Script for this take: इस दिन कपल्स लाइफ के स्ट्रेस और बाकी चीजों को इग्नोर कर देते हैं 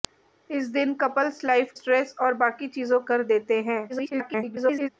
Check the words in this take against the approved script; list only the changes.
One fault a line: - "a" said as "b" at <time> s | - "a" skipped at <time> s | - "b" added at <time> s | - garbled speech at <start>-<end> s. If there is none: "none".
- "के" skipped at 1.7 s
- "को इग्नोर" skipped at 3.0 s
- garbled speech at 3.9-4.9 s